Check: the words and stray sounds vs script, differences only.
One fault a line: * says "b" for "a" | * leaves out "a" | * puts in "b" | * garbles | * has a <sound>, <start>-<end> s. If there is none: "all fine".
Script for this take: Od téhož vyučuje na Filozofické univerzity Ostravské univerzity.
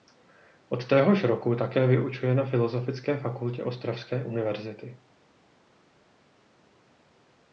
* puts in "roku také"
* says "fakultě" for "univerzity"